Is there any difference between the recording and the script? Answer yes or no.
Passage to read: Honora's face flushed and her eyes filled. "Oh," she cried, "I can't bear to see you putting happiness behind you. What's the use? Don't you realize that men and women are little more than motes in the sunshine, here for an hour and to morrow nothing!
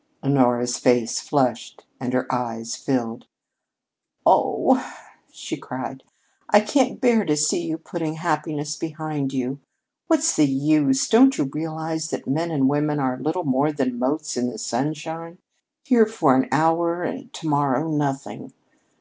no